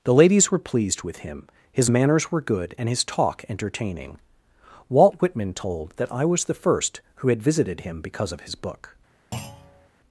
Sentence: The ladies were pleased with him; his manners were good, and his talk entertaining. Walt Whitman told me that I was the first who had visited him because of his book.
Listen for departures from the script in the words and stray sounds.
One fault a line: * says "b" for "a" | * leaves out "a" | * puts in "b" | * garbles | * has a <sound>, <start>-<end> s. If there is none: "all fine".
* leaves out "me"
* has a thud, 9.3-9.9 s